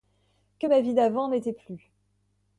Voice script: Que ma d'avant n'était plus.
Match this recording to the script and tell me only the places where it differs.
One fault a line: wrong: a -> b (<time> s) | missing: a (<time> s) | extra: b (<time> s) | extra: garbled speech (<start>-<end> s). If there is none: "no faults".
extra: vie (0.8 s)